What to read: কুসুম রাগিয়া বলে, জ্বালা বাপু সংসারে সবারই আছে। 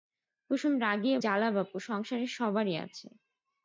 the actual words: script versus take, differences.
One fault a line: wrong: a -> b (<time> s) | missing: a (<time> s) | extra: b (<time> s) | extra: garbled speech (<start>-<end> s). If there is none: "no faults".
missing: বলে (1.2 s)